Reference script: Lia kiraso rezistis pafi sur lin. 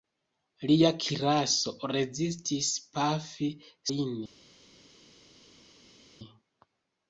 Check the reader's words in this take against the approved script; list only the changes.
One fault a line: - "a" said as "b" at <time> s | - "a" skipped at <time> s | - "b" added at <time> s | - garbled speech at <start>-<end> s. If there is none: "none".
- "sur" skipped at 3.5 s